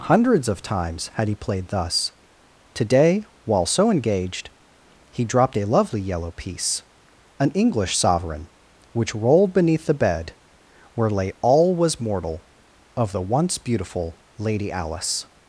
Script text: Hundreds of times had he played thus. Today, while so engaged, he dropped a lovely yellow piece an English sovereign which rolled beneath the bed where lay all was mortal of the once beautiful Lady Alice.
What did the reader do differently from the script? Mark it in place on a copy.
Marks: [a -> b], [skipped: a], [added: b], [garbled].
Hundreds of times had he played thus. Today, while so engaged, he dropped a lovely yellow piece an English sovereign which rolled beneath the bed where lay all was mortal of the once beautiful Lady Alice.